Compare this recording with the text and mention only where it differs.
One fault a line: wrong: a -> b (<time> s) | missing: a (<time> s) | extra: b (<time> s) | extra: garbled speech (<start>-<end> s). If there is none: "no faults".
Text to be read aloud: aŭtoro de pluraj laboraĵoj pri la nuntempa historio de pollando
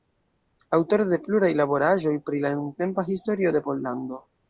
no faults